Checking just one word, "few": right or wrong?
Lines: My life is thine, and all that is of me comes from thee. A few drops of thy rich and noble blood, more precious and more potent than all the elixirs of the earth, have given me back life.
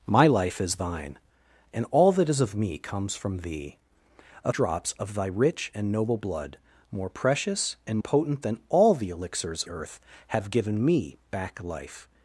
wrong